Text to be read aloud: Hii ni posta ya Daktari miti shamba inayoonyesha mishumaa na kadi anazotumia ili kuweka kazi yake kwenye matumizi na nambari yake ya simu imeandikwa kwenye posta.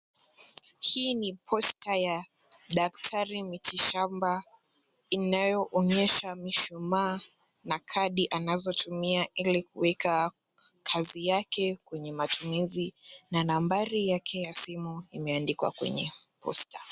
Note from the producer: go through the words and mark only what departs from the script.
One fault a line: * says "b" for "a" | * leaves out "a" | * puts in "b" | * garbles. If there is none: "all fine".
all fine